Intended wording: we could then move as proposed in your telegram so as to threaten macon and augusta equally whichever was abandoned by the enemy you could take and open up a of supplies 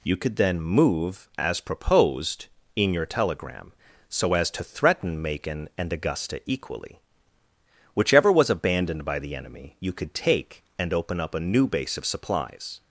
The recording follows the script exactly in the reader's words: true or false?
false